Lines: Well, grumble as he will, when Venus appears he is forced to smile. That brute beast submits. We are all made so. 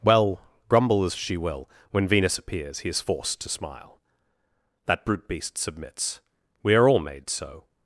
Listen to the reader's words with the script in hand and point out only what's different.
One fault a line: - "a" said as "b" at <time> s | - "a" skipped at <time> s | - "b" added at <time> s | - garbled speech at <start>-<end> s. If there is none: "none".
- "he" said as "she" at 1.1 s